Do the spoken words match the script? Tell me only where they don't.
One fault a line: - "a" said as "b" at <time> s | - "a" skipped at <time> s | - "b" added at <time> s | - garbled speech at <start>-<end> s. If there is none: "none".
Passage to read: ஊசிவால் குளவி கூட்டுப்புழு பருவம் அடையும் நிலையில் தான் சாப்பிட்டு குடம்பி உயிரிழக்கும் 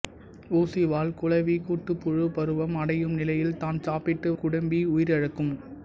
none